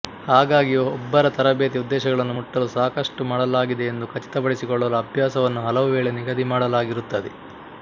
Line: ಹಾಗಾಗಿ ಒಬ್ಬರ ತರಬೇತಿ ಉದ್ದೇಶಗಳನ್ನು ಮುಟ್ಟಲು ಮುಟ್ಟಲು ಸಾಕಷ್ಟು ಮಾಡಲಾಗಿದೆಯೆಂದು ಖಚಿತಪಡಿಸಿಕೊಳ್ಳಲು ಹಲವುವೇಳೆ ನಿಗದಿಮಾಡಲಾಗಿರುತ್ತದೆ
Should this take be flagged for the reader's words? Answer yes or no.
yes